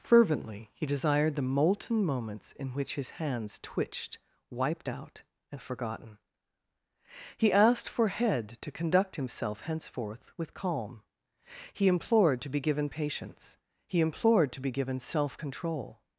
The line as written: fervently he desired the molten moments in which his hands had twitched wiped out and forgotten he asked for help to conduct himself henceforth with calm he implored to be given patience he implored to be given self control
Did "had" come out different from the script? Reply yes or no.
yes